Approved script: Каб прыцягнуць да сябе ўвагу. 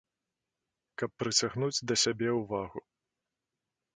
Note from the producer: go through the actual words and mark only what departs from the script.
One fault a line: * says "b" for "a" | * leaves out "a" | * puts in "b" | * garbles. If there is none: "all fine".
all fine